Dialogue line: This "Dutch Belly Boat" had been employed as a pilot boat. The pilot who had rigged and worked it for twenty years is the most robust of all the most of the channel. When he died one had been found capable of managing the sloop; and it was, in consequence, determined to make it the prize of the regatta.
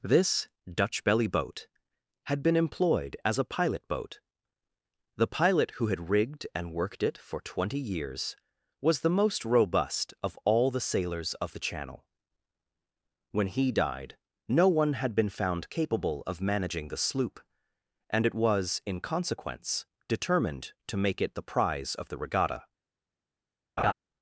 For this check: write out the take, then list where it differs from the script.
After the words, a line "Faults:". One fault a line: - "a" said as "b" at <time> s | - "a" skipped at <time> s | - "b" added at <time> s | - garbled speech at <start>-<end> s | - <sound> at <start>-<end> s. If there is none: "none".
This "Dutch Belly Boat" had been employed as a pilot boat. The pilot who had rigged and worked it for twenty years was the most robust of all the sailors of the channel. When he died no one had been found capable of managing the sloop; and it was, in consequence, determined to make it the prize of the regatta.
Faults:
- "is" said as "was" at 8.8 s
- "most" said as "sailors" at 10.8 s
- "no" added at 14.5 s
- laugh at 23.8-23.9 s